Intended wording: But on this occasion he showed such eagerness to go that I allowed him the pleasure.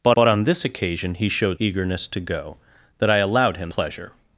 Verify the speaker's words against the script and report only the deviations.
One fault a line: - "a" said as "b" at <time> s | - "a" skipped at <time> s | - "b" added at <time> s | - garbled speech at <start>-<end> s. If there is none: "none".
- "but" added at 0.1 s
- "such" skipped at 1.6 s
- "the" skipped at 3.7 s